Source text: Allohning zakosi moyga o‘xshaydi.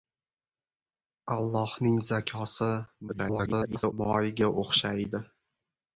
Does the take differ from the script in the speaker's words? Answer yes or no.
yes